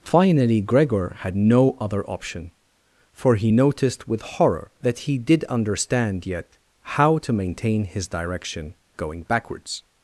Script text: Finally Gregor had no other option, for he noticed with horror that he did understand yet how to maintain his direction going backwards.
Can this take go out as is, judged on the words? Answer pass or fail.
pass